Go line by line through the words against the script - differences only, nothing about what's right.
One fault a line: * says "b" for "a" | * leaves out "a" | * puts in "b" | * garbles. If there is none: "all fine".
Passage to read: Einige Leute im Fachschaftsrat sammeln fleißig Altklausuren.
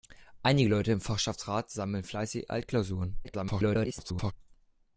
* garbles